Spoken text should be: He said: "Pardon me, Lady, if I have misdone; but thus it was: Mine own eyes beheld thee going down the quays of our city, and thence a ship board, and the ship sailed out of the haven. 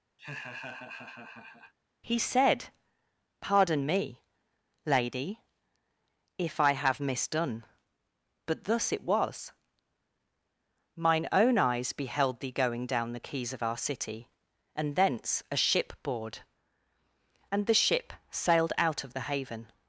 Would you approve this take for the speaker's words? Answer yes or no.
yes